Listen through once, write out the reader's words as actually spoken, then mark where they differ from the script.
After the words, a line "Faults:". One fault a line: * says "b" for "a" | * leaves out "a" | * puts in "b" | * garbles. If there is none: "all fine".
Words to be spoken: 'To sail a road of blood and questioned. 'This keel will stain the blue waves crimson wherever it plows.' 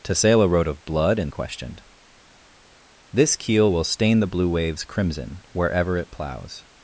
'To sail a road of blood and questioned. 'This keel will stain the blue waves crimson wherever it plows.'
Faults:
all fine